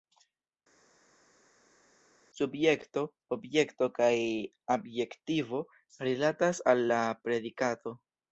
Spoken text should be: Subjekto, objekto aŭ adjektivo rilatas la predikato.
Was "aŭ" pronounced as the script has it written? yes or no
no